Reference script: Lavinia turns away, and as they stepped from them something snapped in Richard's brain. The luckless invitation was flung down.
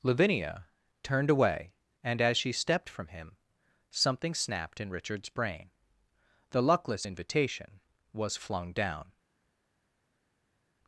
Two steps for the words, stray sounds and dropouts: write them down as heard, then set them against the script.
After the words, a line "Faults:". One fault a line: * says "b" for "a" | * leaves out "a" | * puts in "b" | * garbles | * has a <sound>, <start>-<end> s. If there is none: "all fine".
Lavinia turned away, and as she stepped from him something snapped in Richard's brain. The luckless invitation was flung down.
Faults:
* says "turned" for "turns"
* says "she" for "they"
* says "him" for "them"